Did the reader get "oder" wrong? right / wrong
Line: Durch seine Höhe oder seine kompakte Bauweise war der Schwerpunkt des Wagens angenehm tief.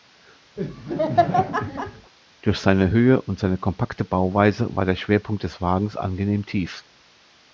wrong